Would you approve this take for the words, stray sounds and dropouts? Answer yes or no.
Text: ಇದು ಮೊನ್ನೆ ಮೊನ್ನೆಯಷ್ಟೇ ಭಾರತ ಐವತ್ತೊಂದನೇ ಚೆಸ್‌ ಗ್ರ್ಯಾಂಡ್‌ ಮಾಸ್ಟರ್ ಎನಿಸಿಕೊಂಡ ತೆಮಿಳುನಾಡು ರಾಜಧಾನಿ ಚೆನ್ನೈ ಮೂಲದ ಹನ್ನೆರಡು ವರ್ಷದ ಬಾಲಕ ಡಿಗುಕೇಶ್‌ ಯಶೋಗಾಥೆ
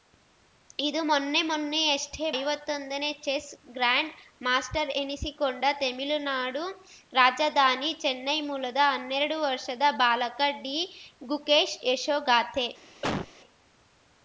no